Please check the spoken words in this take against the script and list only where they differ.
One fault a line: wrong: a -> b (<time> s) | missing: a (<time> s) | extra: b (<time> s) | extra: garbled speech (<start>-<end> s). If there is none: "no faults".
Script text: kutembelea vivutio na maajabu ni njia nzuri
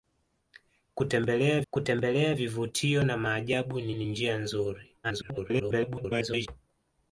extra: kutembelea (1.7 s)
extra: ni (3.9 s)
extra: garbled speech (5.0-6.5 s)